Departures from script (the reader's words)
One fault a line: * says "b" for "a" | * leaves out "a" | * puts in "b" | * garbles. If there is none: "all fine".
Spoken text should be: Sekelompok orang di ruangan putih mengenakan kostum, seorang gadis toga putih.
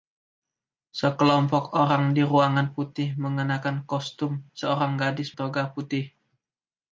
all fine